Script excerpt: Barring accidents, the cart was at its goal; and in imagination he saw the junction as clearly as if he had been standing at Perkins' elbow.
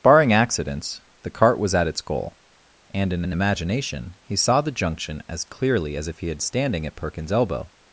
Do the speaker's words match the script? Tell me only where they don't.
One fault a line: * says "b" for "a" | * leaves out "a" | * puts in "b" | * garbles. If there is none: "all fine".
* puts in "in"
* leaves out "been"